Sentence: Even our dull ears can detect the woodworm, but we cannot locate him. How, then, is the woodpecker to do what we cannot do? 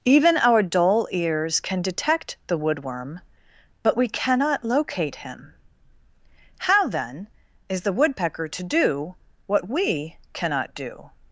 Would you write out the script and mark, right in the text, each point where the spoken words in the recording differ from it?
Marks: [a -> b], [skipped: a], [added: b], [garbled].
Even our dull ears can detect the woodworm, but we cannot locate him. How, then, is the woodpecker to do what we cannot do?